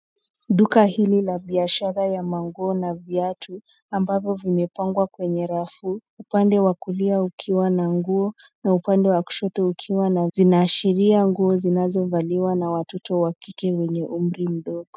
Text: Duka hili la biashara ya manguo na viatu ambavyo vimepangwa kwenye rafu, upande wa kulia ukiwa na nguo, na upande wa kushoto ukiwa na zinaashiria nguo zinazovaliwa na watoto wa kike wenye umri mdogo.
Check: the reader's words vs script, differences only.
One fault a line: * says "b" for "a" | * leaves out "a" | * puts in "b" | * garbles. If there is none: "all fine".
all fine